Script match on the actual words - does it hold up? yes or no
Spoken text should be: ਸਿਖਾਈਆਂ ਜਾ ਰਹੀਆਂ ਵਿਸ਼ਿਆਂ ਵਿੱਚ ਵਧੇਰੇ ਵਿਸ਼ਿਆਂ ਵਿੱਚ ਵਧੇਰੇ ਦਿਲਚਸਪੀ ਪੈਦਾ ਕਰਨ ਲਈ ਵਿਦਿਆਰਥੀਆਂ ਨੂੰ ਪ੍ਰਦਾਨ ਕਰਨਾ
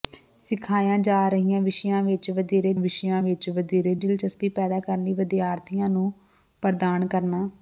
yes